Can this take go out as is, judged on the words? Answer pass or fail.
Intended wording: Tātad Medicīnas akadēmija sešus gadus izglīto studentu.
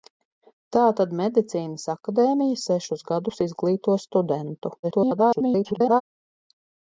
fail